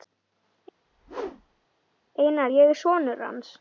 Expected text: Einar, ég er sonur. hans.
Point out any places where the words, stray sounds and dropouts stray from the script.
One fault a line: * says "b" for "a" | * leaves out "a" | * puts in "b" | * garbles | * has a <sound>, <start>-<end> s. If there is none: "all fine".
* has a whoosh, 0.9-1.7 s